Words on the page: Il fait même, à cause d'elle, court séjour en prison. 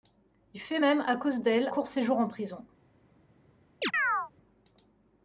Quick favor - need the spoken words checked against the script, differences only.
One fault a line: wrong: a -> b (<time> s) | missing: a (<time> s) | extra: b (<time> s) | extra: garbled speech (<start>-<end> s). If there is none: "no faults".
no faults